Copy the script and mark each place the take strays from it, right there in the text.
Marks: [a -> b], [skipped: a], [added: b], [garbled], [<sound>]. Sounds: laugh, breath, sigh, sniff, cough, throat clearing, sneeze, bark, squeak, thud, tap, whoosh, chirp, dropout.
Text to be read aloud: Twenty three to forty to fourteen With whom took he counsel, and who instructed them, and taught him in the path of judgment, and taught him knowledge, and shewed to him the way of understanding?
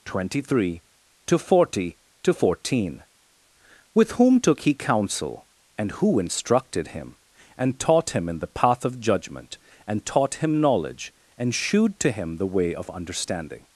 Twenty three to forty to fourteen With whom took he counsel, and who instructed [them, -> him] and taught him in the path of judgment, and taught him knowledge, and shewed to him the way of understanding?